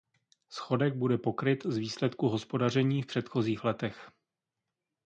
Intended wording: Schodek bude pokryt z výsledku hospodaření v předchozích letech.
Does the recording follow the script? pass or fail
pass